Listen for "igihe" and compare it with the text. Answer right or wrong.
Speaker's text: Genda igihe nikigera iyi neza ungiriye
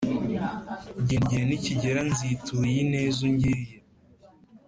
right